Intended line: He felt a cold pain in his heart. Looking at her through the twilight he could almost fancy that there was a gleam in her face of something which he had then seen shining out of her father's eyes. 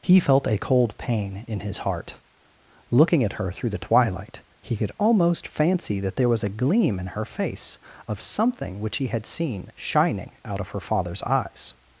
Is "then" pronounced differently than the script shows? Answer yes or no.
yes